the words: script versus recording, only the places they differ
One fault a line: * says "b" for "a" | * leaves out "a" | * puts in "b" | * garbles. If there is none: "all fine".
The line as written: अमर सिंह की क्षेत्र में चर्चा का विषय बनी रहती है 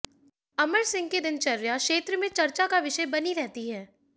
* puts in "दिनचर्या"